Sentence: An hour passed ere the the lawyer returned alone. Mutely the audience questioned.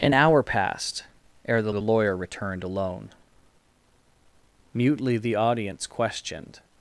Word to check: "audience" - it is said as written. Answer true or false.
true